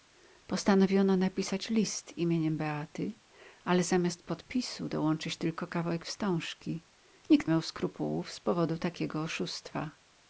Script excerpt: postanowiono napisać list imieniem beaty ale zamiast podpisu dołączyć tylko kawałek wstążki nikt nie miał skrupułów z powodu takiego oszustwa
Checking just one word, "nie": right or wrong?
wrong